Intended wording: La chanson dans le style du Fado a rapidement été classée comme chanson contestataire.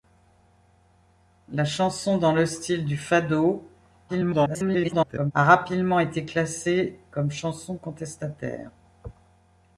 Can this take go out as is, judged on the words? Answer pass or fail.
fail